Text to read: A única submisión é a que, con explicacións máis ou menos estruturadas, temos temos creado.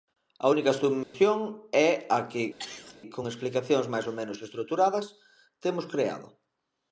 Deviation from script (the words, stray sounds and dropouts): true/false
true